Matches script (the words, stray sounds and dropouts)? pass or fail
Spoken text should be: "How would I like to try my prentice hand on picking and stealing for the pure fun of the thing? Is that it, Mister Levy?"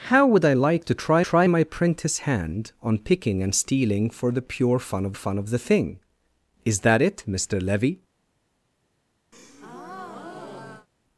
fail